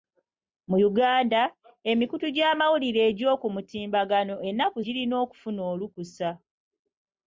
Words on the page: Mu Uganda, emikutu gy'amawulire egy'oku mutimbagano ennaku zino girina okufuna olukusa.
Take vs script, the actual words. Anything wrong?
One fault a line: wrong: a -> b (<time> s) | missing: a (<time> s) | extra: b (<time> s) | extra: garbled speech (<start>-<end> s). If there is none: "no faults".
missing: zino (4.8 s)